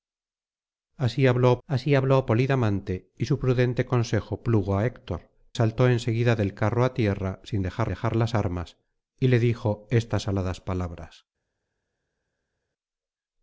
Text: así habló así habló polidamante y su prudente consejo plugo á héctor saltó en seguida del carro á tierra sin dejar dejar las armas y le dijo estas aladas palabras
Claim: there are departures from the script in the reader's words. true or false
false